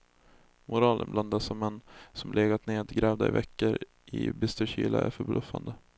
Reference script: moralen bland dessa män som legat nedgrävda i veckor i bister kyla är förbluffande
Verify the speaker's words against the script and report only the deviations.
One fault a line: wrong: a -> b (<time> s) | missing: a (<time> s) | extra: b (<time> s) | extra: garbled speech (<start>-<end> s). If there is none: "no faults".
no faults